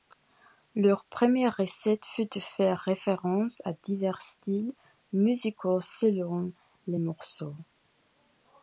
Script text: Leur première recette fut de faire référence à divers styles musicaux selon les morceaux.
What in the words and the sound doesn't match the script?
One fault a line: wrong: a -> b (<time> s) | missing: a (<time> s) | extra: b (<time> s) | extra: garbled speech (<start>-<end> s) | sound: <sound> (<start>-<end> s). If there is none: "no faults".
no faults